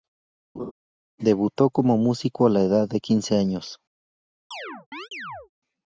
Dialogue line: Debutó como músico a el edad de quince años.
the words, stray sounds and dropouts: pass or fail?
fail